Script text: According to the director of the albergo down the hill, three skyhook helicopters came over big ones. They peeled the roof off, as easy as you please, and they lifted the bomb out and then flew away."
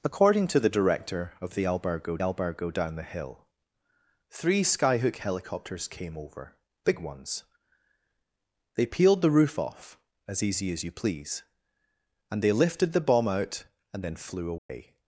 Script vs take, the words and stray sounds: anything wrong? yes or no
yes